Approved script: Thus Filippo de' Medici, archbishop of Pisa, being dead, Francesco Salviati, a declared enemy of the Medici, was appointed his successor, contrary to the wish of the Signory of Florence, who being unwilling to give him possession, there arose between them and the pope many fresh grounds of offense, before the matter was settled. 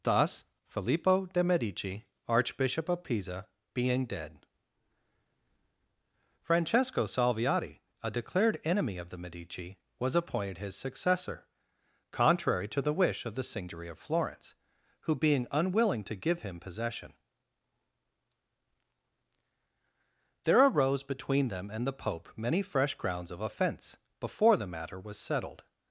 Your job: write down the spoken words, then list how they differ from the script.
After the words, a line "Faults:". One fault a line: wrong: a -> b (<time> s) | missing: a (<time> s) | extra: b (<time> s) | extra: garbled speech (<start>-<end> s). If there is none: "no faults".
Thus Filippo de' Medici, archbishop of Pisa, being dead, Francesco Salviati, a declared enemy of the Medici, was appointed his successor, contrary to the wish of the Signory of Florence, who being unwilling to give him possession, there arose between them and the pope many fresh grounds of offense, before the matter was settled.
Faults:
no faults